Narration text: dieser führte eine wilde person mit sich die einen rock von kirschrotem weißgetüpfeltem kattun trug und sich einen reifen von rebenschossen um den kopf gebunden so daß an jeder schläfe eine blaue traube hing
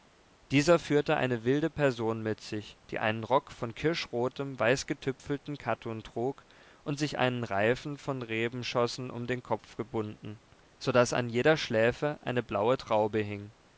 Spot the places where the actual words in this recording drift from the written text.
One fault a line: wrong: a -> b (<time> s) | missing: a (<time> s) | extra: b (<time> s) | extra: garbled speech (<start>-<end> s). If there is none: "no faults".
no faults